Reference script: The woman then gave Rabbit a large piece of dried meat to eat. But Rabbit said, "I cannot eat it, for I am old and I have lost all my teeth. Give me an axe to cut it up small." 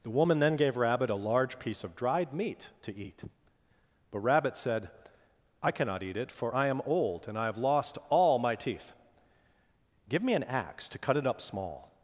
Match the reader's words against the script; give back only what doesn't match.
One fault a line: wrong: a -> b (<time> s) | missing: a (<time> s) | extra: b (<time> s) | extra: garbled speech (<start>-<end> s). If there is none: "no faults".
no faults